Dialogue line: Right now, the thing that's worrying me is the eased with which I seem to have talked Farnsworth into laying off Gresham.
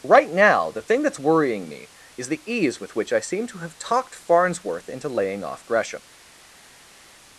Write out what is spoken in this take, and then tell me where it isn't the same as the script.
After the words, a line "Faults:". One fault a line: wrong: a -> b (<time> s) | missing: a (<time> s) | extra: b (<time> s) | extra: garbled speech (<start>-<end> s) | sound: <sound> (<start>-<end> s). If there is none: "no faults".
Right now, the thing that's worrying me is the ease with which I seem to have talked Farnsworth into laying off Gresham.
Faults:
wrong: eased -> ease (2.5 s)